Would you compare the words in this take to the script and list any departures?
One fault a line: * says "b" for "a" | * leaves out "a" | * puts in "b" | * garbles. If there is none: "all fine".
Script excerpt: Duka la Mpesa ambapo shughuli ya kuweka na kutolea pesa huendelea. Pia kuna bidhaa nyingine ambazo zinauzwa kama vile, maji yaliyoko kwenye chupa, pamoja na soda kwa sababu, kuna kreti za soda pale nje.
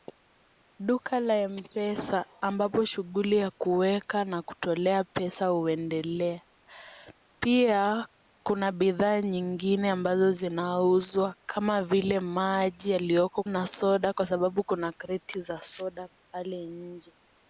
* leaves out "kwenye chupa pamoja"